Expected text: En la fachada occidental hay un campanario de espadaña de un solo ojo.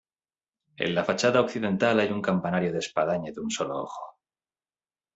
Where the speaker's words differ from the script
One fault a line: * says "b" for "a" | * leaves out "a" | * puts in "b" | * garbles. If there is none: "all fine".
all fine